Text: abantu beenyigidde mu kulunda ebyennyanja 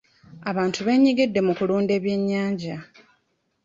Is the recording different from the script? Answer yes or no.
no